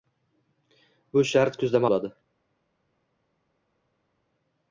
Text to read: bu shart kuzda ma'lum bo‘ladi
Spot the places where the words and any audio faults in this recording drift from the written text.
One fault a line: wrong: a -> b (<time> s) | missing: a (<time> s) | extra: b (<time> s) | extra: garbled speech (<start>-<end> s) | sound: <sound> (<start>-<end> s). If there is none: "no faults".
missing: ma'lum (1.9 s)